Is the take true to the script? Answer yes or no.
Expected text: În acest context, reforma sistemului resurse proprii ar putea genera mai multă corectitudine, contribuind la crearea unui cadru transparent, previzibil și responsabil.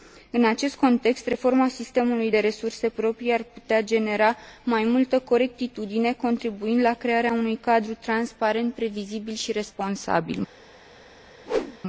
no